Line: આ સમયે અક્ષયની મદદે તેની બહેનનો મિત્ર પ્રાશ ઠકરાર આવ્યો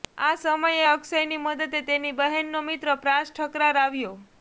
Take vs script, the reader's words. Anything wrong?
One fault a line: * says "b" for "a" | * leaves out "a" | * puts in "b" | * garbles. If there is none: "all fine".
all fine